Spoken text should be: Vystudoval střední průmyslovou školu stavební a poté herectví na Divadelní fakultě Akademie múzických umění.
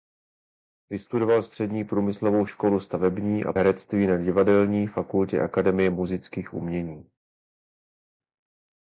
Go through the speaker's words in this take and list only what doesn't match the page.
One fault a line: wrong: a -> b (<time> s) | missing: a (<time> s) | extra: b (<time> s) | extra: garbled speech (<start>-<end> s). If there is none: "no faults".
missing: poté (3.5 s)